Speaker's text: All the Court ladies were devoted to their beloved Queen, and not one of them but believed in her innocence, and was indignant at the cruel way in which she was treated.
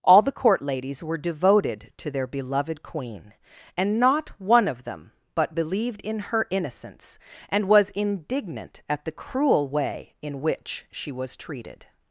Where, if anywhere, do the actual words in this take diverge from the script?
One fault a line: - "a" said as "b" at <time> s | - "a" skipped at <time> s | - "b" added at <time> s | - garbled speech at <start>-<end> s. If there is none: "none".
none